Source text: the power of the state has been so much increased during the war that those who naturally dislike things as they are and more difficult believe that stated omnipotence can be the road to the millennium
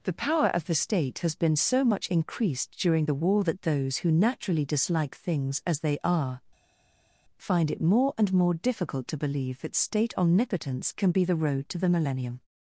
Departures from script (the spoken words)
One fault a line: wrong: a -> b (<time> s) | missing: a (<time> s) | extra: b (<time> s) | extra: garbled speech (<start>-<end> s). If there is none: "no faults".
extra: find it more (7.4 s)
extra: to (9.1 s)
wrong: stated -> state (9.7 s)